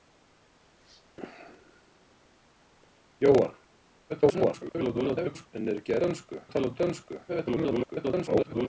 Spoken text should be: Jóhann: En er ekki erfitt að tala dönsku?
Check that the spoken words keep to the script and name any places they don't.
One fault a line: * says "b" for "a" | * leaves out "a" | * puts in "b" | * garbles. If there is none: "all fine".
* garbles
* says "dönsku" for "erfitt"
* garbles